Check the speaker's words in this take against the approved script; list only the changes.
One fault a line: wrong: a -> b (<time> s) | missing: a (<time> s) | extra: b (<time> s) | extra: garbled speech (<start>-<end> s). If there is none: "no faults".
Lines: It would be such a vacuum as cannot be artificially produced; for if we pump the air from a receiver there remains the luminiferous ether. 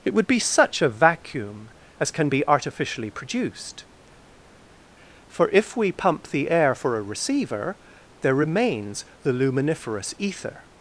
wrong: cannot -> can (2.1 s)
wrong: from -> for (6.7 s)